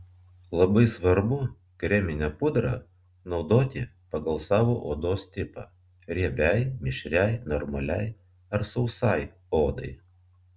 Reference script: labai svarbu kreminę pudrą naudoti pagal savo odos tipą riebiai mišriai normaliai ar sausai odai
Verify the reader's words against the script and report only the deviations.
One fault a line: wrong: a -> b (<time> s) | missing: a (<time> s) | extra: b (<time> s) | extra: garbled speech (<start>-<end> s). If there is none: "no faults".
no faults